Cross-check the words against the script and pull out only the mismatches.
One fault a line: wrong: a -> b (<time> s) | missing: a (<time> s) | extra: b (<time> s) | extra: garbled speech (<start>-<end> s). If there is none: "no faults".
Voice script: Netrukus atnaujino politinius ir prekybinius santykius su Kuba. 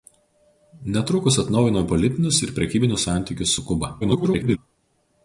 extra: garbled speech (4.0-4.6 s)